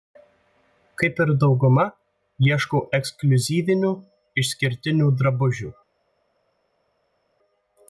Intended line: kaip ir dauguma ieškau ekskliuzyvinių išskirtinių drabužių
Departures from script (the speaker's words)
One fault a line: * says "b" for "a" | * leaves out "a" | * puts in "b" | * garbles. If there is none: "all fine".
all fine